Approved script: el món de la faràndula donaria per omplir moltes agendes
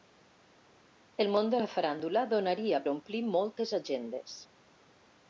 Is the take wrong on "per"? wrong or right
wrong